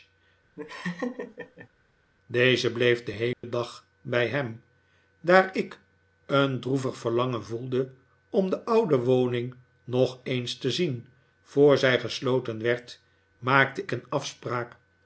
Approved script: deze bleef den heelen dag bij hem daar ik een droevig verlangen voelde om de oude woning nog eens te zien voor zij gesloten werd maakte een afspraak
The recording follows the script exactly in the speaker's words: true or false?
true